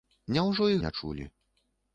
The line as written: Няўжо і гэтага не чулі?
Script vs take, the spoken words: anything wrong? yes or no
yes